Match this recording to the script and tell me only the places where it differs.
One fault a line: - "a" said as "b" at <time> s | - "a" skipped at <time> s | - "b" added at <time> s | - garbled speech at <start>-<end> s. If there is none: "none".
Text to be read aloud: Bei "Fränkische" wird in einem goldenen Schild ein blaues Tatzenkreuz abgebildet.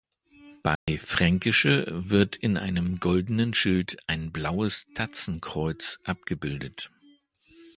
none